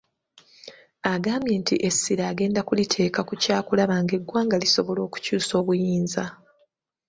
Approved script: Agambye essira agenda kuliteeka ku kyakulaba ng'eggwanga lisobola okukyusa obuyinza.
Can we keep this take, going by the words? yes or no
no